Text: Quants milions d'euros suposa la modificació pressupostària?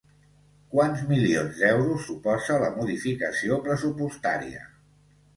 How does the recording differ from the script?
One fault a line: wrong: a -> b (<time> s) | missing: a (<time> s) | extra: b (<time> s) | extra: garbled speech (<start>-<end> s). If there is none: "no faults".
no faults